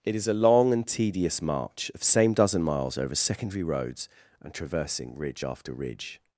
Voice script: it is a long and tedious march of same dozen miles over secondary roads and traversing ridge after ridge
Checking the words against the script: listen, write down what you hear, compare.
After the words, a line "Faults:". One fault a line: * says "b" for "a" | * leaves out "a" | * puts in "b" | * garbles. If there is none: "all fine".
it is a long and tedious march of same dozen miles over secondary roads and traversing ridge after ridge
Faults:
all fine